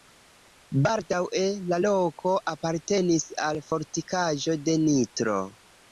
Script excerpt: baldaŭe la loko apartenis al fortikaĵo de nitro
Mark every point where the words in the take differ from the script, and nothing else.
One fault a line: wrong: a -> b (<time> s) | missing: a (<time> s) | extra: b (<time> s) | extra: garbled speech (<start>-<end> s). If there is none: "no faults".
no faults